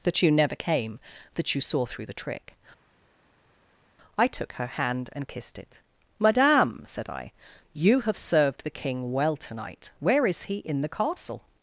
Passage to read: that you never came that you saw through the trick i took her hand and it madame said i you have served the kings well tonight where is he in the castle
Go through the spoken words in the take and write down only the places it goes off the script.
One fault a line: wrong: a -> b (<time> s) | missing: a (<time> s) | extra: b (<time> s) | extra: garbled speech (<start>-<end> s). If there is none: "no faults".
extra: kissed (5.3 s)
wrong: kings -> king (8.7 s)